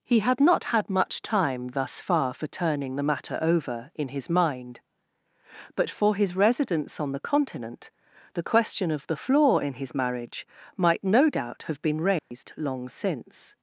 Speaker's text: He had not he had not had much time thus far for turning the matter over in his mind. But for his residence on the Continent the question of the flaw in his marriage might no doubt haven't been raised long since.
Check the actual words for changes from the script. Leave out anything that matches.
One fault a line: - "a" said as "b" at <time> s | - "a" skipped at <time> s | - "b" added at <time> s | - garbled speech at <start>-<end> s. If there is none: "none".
- "he" skipped at 0.7 s
- "not had" skipped at 0.9 s
- "haven't" said as "have" at 11.6 s